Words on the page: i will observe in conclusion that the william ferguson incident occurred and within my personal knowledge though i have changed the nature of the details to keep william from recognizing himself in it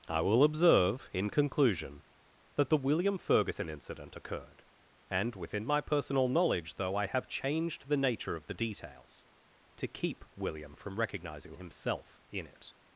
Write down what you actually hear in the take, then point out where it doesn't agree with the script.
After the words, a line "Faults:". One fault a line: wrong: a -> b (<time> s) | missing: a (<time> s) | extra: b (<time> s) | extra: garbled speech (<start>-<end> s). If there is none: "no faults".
i will observe in conclusion that the william ferguson incident occurred and within my personal knowledge though i have changed the nature of the details to keep william from recognizing himself in it
Faults:
no faults